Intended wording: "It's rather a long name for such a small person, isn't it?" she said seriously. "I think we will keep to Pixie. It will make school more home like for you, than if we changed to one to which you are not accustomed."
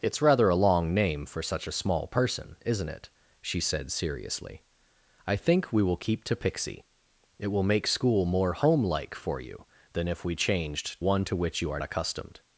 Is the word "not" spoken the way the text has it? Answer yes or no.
no